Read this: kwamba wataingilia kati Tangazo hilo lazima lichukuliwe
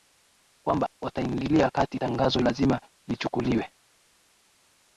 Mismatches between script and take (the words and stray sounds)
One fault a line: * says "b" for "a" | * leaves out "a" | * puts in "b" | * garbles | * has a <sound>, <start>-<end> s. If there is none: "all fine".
* leaves out "hilo"